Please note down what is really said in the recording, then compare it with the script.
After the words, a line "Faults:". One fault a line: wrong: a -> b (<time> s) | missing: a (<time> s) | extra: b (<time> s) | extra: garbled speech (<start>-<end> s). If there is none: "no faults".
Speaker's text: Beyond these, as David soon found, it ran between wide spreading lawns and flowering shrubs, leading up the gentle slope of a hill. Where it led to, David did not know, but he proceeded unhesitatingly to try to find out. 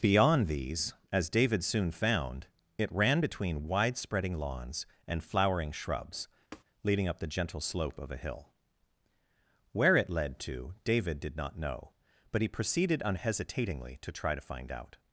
Beyond these, as David soon found, it ran between wide spreading lawns and flowering shrubs, leading up the gentle slope of a hill. Where it led to, David did not know, but he proceeded unhesitatingly to try to find out.
Faults:
no faults